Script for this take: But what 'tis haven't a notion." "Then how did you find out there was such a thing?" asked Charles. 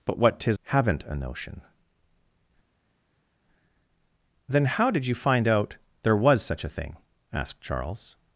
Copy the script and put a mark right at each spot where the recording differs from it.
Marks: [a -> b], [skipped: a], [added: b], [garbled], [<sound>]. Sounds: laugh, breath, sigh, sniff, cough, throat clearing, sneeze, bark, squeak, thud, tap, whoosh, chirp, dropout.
But what 'tis haven't a notion." "Then how did you find out there was such a thing?" asked Charles.